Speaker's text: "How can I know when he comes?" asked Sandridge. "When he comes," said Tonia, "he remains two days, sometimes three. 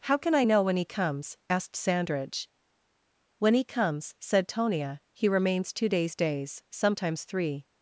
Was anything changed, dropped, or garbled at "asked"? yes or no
no